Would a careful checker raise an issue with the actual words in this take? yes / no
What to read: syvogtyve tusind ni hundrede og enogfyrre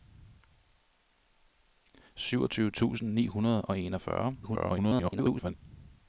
yes